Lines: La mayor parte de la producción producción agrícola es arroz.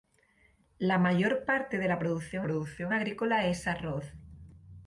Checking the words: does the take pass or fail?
pass